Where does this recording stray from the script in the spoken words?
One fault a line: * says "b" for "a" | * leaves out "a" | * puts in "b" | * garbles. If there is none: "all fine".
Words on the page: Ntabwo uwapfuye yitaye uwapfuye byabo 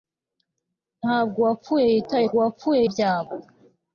all fine